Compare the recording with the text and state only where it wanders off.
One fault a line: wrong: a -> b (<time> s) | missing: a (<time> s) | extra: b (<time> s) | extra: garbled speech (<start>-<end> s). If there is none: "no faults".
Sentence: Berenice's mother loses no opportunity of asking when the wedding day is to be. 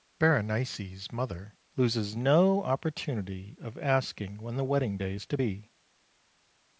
no faults